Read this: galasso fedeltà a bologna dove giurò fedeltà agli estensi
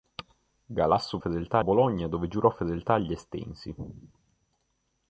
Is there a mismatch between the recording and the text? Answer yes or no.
no